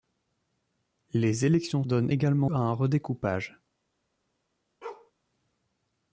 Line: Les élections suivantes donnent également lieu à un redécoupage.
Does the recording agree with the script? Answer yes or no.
no